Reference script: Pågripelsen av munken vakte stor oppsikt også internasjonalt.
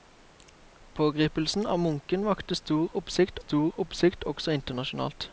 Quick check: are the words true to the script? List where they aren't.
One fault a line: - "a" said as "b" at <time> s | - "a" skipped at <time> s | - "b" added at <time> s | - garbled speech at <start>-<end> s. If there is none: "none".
- "stor oppsikt" added at 3.4 s